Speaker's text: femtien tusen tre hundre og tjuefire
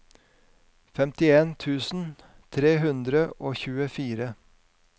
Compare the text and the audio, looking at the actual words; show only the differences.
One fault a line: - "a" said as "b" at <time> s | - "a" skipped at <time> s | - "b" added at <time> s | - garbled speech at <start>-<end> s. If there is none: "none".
none